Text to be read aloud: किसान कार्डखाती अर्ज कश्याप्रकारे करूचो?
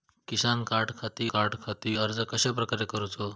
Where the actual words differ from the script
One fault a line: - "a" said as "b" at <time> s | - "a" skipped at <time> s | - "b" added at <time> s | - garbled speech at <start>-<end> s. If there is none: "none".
- "कार्डखाती" added at 1.3 s